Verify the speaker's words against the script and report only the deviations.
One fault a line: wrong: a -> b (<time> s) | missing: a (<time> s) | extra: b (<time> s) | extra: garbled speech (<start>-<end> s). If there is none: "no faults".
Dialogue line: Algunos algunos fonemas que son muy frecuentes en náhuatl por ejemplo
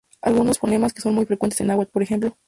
missing: algunos (0.6 s)